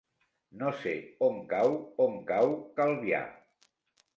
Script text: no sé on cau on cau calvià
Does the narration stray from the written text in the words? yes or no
no